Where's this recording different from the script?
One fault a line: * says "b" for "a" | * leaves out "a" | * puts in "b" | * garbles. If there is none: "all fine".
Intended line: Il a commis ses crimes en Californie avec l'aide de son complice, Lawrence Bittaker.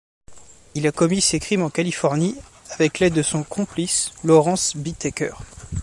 all fine